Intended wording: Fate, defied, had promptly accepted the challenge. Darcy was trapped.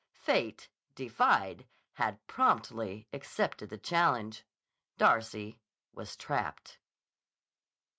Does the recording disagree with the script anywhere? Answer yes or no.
no